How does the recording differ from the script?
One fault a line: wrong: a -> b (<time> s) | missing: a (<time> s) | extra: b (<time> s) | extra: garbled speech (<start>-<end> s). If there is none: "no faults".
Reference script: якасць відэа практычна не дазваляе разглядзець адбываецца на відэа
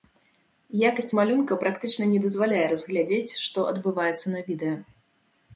wrong: відэа -> малюнка (1.2 s)
extra: што (3.5 s)